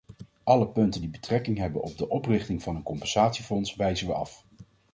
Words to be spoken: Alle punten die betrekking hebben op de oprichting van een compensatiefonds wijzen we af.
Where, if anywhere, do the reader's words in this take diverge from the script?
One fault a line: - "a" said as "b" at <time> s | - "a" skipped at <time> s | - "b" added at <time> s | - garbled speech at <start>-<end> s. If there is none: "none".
none